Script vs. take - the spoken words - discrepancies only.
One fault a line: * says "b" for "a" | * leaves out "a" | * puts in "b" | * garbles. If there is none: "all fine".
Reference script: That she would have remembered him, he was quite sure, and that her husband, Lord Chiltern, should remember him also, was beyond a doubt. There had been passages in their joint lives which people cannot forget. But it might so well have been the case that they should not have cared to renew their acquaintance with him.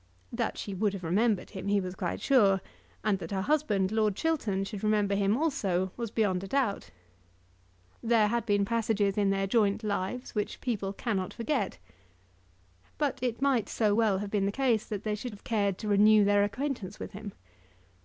* leaves out "not"